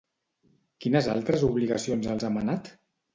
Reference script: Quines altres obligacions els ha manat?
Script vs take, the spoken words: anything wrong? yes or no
no